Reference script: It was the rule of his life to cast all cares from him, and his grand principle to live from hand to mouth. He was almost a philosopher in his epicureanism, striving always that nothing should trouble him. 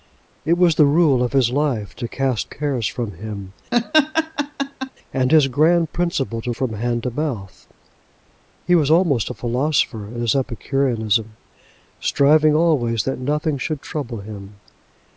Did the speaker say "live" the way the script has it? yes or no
no